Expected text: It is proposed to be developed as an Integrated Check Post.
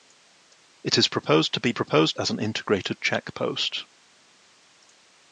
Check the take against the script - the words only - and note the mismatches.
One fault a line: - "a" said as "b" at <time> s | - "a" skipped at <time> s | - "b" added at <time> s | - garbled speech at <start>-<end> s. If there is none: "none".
- "developed" said as "proposed" at 1.7 s